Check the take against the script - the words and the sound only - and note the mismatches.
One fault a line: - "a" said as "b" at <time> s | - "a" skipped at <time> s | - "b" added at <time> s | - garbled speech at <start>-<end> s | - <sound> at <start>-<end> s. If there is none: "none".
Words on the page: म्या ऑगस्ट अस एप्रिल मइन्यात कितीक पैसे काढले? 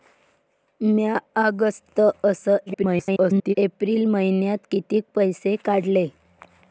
- garbled speech at 2.7-3.5 s